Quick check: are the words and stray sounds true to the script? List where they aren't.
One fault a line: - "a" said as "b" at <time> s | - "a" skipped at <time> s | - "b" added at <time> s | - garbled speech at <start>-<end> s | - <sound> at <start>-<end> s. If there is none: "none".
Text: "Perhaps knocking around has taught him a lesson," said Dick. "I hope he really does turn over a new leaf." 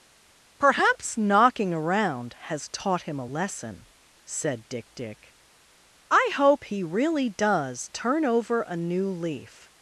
- "Dick" added at 4.9 s